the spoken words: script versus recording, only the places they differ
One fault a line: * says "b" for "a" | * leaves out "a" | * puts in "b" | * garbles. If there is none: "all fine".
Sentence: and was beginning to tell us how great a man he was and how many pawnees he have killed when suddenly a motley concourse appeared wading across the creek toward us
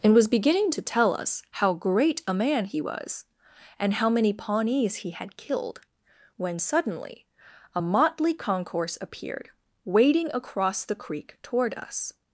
* says "had" for "have"